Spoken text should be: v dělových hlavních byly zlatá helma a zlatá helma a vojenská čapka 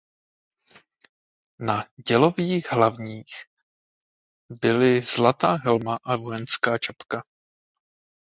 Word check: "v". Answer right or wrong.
wrong